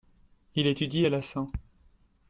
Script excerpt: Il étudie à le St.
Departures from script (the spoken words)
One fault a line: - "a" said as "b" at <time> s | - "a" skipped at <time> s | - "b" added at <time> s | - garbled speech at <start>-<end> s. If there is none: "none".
- "le" said as "la" at 1.1 s